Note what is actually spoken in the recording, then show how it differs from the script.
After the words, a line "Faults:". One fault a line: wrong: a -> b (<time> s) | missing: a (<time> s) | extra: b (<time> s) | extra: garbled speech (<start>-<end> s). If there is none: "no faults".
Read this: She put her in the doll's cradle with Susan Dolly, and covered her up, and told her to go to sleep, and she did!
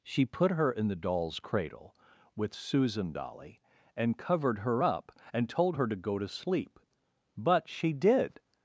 She put her in the doll's cradle with Susan Dolly, and covered her up, and told her to go to sleep, but she did!
Faults:
wrong: and -> but (7.4 s)